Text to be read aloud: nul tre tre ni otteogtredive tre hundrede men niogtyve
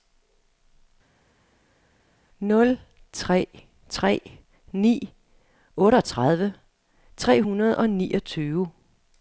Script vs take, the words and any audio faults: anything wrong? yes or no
yes